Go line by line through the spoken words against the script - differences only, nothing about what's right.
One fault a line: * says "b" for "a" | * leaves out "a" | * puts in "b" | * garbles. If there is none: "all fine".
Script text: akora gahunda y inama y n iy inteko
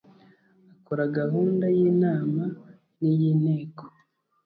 all fine